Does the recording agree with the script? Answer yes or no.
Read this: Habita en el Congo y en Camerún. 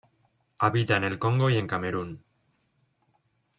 yes